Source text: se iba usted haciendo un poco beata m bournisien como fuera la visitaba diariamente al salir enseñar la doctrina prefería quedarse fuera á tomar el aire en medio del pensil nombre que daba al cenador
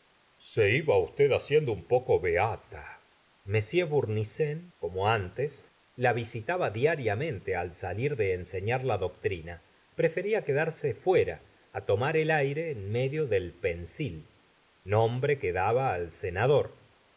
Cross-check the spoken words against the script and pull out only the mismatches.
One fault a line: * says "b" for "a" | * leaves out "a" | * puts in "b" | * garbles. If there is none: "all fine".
* says "antes" for "fuera"
* puts in "de"